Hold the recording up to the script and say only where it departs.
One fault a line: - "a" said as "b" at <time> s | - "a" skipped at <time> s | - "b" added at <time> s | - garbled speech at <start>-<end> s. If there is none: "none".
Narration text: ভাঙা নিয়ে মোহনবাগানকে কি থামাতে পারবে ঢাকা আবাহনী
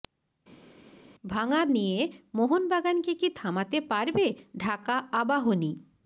none